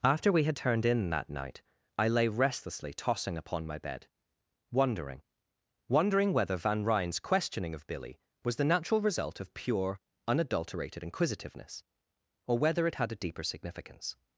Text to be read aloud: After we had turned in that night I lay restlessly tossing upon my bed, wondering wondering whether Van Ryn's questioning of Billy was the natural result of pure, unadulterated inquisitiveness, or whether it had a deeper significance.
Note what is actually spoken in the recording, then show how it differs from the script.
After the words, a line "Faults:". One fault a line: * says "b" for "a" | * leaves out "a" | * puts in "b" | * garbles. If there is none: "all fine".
After we had turned in that night I lay restlessly tossing upon my bed, wondering wondering whether Van Ryn's questioning of Billy was the natural result of pure, unadulterated inquisitiveness, or whether it had a deeper significance.
Faults:
all fine